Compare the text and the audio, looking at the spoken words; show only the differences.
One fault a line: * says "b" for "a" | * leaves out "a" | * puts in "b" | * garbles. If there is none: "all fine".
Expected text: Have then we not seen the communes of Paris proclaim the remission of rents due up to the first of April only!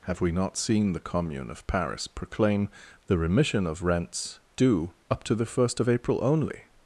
* leaves out "then"
* says "commune" for "communes"